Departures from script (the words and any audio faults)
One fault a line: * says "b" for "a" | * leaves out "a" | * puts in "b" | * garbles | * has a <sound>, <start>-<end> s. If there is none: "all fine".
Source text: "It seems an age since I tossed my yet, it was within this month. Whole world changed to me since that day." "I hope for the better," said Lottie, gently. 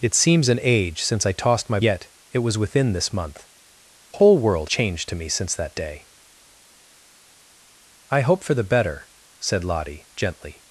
all fine